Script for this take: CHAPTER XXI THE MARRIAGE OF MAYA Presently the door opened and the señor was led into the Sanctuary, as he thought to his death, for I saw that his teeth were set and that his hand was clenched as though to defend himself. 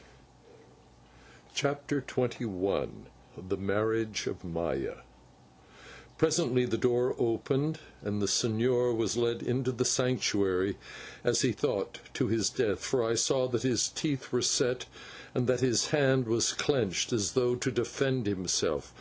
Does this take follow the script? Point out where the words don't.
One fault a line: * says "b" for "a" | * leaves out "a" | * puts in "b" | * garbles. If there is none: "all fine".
all fine